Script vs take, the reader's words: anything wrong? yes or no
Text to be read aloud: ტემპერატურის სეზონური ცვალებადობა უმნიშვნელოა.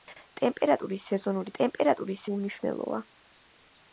yes